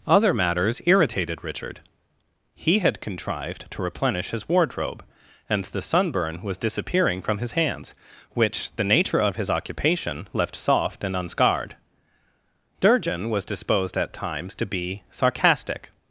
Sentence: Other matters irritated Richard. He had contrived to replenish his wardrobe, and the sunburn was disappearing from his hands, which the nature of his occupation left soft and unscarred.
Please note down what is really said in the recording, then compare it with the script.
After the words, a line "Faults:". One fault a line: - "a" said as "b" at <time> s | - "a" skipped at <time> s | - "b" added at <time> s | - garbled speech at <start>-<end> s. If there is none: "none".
Other matters irritated Richard. He had contrived to replenish his wardrobe, and the sunburn was disappearing from his hands, which the nature of his occupation left soft and unscarred. Durgin was disposed at times to be sarcastic
Faults:
- "Durgin was disposed at times to be sarcastic" added at 12.8 s